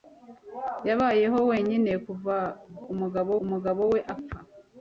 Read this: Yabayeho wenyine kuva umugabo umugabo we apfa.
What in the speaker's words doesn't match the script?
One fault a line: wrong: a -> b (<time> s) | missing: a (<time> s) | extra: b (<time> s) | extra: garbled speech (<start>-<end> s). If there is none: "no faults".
no faults